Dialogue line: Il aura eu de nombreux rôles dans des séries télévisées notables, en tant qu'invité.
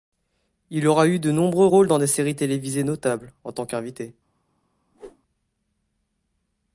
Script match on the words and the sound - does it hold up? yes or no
no